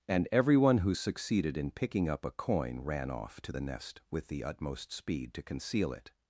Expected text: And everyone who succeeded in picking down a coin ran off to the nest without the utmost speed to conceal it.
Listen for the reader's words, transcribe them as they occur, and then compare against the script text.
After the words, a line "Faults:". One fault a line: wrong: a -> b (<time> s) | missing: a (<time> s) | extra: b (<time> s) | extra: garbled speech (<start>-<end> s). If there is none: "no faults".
And everyone who succeeded in picking up a coin ran off to the nest with the utmost speed to conceal it.
Faults:
wrong: down -> up (2.1 s)
wrong: without -> with (4.1 s)